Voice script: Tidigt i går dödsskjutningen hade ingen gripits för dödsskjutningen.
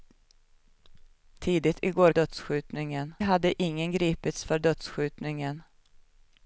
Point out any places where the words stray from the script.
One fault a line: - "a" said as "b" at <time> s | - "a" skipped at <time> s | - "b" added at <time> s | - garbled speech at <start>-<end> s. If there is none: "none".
none